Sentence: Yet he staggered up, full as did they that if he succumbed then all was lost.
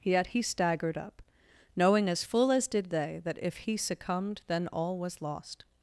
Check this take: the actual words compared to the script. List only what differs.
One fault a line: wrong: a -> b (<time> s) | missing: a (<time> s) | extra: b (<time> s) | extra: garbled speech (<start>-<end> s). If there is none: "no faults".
extra: knowing as (1.8 s)